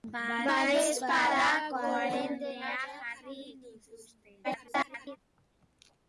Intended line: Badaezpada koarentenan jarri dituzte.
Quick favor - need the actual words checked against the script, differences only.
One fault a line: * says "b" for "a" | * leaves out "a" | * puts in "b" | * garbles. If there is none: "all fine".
* garbles